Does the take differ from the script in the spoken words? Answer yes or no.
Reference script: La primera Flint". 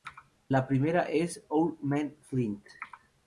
yes